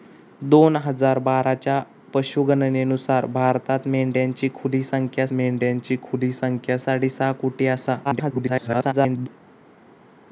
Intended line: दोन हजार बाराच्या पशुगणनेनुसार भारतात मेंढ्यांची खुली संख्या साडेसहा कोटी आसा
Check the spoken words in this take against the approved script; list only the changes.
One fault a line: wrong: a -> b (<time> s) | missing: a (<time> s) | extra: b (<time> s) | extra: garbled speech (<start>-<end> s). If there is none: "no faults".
extra: मेंढ्यांची खुली संख्या (5.3 s)
extra: garbled speech (8.0-9.3 s)